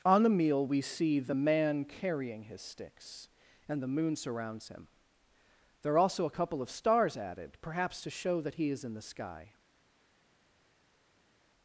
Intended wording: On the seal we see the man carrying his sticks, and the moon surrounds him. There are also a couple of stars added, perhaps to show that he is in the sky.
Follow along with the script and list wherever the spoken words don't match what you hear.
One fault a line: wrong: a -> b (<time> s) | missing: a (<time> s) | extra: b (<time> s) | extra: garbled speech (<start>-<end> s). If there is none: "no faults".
wrong: seal -> meal (0.3 s)